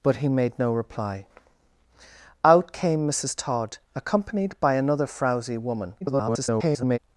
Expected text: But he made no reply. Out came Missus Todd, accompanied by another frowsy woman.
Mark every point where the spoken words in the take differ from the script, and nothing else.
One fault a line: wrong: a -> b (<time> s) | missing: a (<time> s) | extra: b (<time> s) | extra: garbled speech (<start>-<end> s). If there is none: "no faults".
extra: garbled speech (6.0-7.0 s)